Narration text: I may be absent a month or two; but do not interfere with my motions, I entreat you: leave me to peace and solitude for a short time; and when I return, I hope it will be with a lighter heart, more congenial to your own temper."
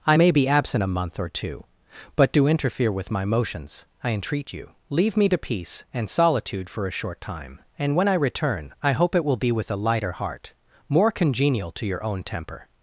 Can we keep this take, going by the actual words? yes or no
no